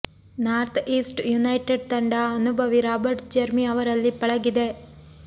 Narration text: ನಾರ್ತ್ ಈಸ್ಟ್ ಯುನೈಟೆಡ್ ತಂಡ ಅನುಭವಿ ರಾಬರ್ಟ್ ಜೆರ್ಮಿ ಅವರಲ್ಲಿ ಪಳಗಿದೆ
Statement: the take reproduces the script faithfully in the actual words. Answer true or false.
true